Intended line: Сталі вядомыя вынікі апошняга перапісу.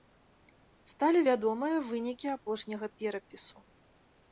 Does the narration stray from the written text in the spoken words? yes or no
no